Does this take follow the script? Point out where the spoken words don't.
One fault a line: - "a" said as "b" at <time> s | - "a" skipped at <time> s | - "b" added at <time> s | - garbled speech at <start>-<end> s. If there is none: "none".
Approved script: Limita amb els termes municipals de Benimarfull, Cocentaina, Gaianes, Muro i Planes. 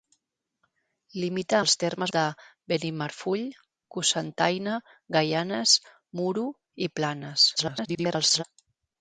- "amb" skipped at 1.6 s
- "municipals" skipped at 2.1 s
- garbled speech at 7.6-8.4 s